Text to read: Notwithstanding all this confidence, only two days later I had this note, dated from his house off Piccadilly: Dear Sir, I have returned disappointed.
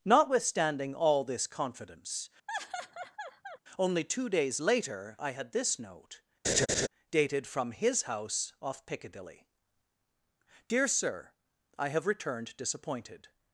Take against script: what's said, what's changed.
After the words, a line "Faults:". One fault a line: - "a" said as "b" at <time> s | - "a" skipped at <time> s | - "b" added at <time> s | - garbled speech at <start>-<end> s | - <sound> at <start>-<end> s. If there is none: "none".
Notwithstanding all this confidence, only two days later I had this note, dated from his house off Piccadilly: Dear Sir, I have returned disappointed.
Faults:
- laugh at 2.5-3.6 s
- laugh at 6.4-6.9 s